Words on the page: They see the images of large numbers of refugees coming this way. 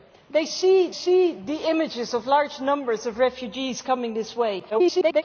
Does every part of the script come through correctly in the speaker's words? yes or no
no